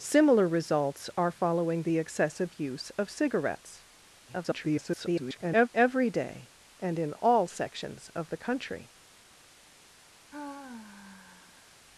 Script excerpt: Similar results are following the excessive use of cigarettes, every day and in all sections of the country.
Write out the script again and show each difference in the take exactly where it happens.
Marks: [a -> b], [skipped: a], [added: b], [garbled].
Similar results are following the excessive use of cigarettes, [garbled] every day and in all sections of the country.